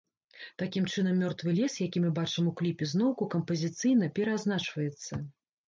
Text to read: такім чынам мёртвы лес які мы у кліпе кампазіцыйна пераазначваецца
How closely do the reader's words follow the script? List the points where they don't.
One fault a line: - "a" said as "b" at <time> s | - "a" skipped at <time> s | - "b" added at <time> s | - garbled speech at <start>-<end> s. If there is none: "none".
- "бачым" added at 2.2 s
- "зноўку" added at 3.0 s